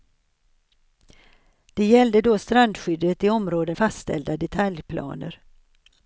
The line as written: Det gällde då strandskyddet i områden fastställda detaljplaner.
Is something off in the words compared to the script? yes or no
no